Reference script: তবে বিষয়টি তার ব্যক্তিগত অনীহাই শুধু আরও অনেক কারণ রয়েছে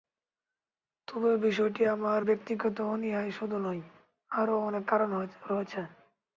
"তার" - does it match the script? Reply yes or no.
no